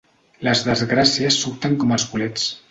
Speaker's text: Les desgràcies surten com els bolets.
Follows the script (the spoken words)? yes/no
yes